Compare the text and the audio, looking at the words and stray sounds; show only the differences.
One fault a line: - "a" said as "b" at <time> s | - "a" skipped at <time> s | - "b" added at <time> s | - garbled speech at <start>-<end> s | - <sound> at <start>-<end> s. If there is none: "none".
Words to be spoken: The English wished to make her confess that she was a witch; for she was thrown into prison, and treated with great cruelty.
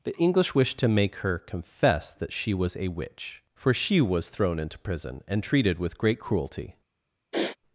- sniff at 7.3-7.6 s